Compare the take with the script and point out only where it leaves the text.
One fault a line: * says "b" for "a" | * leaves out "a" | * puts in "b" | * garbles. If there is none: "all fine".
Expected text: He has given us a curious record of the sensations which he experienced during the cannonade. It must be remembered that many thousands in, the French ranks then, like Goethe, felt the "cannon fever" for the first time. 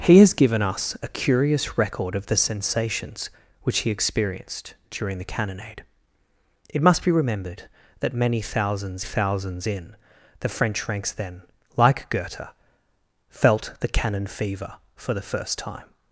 * puts in "thousands"